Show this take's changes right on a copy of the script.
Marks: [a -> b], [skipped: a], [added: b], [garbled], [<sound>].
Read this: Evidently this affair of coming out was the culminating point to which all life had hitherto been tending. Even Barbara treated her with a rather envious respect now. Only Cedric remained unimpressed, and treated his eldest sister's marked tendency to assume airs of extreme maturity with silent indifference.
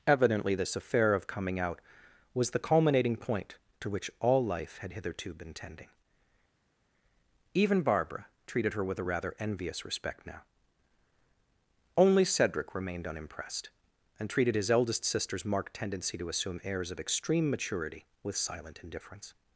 Evidently this affair of coming out was the culminating point to which all life had hitherto been tending. Even Barbara treated her with a rather envious respect now. Only Cedric remained unimpressed, and treated his eldest sister's marked tendency to assume airs of extreme maturity with silent indifference.